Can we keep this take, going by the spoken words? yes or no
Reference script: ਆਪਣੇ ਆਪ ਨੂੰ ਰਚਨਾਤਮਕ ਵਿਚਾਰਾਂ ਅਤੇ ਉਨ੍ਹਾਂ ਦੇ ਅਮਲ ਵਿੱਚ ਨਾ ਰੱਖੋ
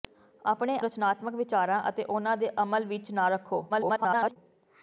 no